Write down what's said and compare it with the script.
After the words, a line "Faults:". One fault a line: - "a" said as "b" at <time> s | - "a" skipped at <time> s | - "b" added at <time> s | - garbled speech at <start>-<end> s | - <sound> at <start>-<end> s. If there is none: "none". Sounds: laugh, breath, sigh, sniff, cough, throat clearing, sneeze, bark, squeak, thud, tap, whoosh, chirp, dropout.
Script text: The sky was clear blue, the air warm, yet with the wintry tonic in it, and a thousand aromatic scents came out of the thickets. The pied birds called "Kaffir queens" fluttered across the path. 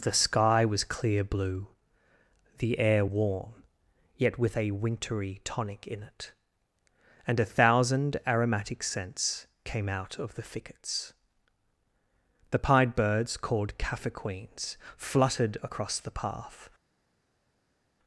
The sky was clear blue, the air warm, yet with a wintry tonic in it, and a thousand aromatic scents came out of the thickets. The pied birds called "Kaffir queens" fluttered across the path.
Faults:
- "the" said as "a" at 4.5 s